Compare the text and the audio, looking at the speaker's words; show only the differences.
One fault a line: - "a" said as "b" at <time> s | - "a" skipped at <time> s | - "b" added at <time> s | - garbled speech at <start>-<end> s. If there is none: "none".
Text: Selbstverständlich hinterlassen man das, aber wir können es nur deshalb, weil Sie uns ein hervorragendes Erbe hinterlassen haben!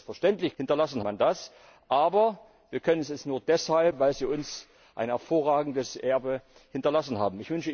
none